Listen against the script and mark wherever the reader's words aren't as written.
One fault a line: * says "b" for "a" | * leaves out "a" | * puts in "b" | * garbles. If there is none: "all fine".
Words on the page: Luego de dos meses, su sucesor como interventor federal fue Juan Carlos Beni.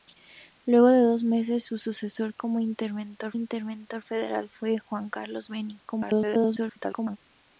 * puts in "interventor"
* garbles